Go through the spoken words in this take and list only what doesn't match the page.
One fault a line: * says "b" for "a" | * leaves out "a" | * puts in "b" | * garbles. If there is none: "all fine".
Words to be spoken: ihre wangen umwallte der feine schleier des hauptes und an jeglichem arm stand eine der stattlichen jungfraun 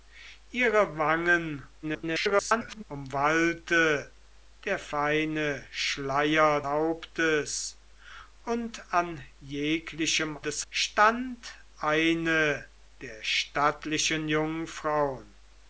* garbles
* leaves out "des"
* says "des" for "arm"